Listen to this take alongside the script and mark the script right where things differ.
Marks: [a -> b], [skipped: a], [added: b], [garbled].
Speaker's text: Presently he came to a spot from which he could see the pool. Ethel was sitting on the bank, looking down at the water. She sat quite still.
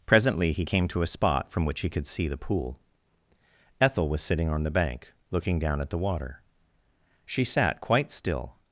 Presently he came to a spot from which he could see the pool. Ethel was sitting on the bank, looking down at the water. She sat quite still.